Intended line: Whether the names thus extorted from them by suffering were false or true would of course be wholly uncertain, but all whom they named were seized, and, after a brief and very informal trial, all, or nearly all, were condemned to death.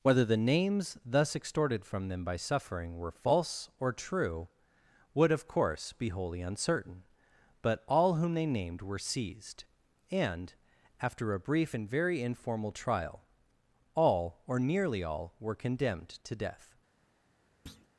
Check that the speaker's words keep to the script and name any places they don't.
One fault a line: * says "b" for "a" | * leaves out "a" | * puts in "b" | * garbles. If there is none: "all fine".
all fine